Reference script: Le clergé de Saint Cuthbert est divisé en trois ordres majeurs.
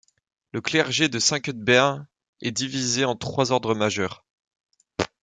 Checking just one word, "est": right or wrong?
right